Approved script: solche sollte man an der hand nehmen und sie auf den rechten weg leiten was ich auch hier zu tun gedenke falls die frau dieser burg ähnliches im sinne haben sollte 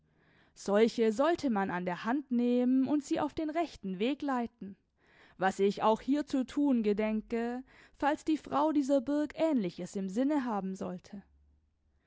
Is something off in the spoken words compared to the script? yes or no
no